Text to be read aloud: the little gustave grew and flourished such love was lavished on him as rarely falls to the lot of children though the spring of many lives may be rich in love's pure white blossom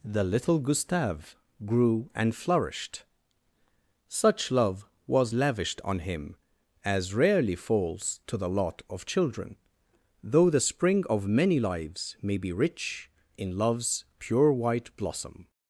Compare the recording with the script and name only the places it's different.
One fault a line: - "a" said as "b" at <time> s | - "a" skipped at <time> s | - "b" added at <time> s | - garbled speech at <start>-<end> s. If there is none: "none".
none